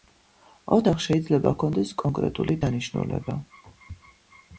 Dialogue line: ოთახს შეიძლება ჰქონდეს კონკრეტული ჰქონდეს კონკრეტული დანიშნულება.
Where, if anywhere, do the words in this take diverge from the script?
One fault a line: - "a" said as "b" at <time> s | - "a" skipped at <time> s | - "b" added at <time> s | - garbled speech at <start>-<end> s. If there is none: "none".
- "ჰქონდეს კონკრეტული" skipped at 2.6 s